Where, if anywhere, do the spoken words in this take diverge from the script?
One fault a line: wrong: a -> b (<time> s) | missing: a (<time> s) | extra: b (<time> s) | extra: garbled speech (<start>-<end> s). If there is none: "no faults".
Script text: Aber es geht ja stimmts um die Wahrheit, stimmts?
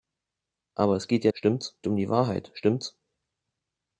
no faults